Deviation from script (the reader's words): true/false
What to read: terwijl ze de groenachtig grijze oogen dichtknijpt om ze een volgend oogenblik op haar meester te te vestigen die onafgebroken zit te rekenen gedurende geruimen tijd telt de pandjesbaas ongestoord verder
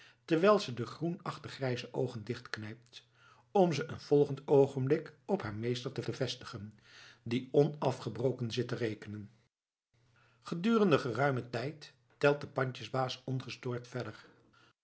false